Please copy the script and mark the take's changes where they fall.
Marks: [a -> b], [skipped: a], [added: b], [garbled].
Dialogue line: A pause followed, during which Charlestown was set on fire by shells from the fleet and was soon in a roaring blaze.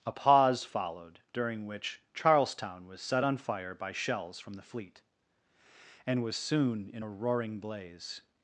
A pause followed, during which Charlestown was set on fire by shells from the fleet and was soon in a roaring blaze.